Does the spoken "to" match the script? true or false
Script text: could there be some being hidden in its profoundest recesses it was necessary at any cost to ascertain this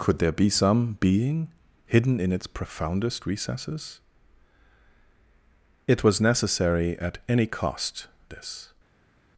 false